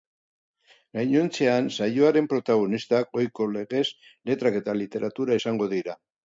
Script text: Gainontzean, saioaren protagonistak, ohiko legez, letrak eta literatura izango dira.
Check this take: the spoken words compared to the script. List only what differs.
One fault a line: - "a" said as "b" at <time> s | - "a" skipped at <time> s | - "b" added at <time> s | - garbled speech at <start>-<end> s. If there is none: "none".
none